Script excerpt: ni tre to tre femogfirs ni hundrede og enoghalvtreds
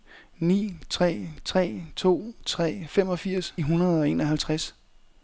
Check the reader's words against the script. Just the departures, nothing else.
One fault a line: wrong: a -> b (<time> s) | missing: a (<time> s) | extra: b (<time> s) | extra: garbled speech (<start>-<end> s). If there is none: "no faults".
extra: tre (1.4 s)
missing: ni (3.5 s)